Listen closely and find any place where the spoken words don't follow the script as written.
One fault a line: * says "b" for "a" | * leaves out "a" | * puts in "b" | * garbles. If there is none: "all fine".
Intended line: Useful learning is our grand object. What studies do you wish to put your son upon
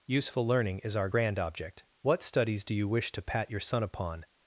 * says "pat" for "put"